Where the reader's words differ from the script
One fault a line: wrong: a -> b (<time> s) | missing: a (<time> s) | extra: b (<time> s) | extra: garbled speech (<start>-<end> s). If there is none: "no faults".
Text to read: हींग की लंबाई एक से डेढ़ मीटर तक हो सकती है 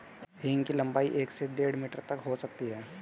no faults